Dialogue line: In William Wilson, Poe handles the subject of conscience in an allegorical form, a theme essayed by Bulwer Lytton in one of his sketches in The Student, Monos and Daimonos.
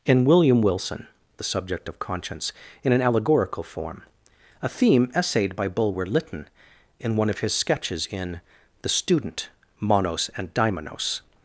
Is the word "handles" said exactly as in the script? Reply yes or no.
no